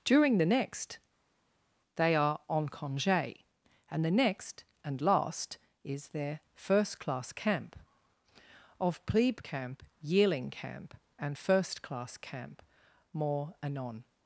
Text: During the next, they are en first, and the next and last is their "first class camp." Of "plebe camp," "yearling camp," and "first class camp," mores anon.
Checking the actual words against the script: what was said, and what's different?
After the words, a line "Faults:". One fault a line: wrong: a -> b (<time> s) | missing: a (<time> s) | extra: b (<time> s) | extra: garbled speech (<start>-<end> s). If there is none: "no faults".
During the next, they are en congé, and the next and last is their "first class camp." Of "plebe camp," "yearling camp," and "first class camp," more anon.
Faults:
wrong: first -> congé (2.7 s)
wrong: mores -> more (13.1 s)